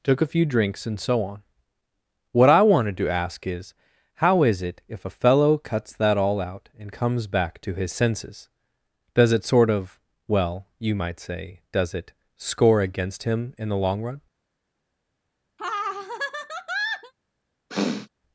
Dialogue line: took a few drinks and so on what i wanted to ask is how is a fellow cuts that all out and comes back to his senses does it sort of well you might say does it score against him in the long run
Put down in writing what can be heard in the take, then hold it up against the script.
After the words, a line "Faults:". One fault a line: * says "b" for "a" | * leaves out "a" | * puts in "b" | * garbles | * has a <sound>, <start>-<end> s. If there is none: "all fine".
took a few drinks and so on what i wanted to ask is how is it if a fellow cuts that all out and comes back to his senses does it sort of well you might say does it score against him in the long run
Faults:
* puts in "it if"
* has a laugh, 15.6-17.1 s
* has a sniff, 17.7-18.1 s